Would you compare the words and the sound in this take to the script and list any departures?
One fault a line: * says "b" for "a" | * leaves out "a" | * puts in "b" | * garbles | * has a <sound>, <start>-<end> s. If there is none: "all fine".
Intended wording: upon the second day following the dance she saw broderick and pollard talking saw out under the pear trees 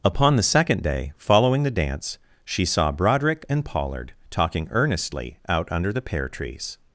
* says "earnestly" for "saw"